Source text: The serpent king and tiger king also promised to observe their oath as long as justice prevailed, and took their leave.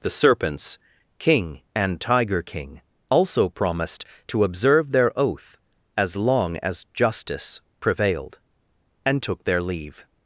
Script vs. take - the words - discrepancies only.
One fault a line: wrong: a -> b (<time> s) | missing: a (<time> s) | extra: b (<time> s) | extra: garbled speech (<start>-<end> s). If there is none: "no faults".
wrong: serpent -> serpents (0.1 s)